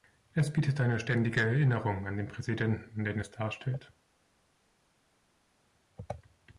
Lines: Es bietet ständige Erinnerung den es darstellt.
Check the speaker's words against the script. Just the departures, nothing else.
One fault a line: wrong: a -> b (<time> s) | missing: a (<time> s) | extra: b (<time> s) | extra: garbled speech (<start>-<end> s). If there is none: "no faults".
extra: eine (0.8 s)
extra: an den Präsidenten (2.1 s)